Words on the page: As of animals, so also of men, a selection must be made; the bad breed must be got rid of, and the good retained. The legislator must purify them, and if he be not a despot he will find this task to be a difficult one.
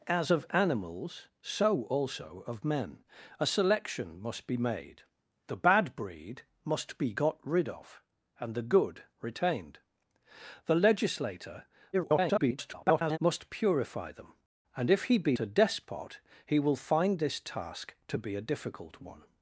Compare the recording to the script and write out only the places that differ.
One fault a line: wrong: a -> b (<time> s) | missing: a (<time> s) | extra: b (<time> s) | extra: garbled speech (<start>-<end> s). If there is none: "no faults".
extra: garbled speech (11.9-13.2 s)
missing: not (15.4 s)